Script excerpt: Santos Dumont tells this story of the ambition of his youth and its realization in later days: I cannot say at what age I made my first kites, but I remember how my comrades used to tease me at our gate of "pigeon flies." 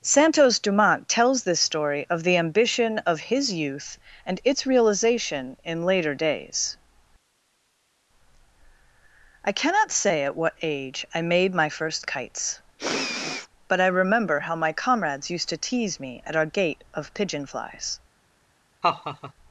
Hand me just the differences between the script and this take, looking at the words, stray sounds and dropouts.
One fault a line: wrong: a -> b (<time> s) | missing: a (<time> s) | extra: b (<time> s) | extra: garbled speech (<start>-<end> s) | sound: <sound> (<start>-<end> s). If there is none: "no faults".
sound: sniff (12.8-13.5 s)
sound: laugh (18.8-19.3 s)